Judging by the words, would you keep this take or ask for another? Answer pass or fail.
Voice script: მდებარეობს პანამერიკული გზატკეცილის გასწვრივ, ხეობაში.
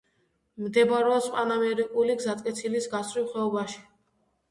pass